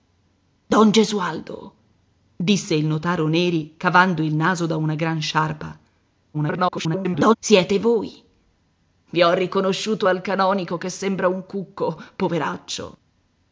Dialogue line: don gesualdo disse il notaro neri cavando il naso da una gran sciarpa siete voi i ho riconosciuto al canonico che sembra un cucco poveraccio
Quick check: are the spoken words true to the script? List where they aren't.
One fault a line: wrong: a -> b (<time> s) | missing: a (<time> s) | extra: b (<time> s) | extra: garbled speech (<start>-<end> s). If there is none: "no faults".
extra: garbled speech (6.3-7.4 s)